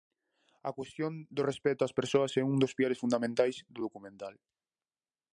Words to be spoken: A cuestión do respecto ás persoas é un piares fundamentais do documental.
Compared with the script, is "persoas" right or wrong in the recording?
right